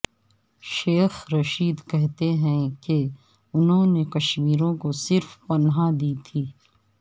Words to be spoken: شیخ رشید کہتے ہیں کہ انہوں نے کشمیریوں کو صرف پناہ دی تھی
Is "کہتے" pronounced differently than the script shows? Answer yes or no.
no